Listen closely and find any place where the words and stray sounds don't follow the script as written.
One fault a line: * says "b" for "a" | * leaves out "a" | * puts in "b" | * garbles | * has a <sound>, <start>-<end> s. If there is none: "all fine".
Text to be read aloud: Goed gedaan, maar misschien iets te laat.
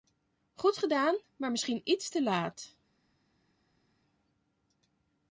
all fine